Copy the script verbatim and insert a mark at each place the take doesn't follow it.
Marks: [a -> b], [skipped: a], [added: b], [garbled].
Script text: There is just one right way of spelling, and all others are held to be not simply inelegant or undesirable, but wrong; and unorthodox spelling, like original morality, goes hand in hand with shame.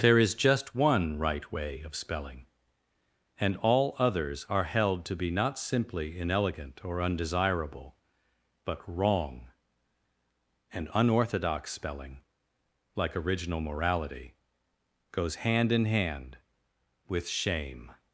There is just one right way of spelling, and all others are held to be not simply inelegant or undesirable, but wrong; and unorthodox spelling, like original morality, goes hand in hand with shame.